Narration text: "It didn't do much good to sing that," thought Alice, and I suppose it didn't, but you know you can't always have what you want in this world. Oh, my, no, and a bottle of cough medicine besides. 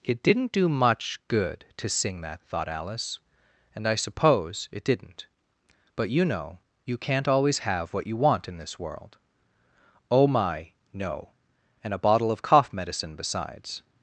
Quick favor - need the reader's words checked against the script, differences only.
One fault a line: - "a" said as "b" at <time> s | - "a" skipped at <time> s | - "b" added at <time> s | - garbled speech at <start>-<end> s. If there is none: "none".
none